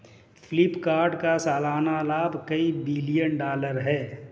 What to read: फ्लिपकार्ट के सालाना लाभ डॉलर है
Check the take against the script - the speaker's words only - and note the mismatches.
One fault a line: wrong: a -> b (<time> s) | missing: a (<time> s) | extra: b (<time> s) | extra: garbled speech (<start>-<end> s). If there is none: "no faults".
wrong: के -> का (1.1 s)
extra: कई बिलियन (2.5 s)